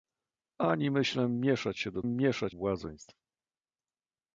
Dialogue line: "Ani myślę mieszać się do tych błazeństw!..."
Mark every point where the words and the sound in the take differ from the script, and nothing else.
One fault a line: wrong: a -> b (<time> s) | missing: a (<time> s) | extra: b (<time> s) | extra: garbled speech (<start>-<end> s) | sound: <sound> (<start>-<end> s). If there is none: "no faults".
wrong: tych -> mieszać (2.1 s)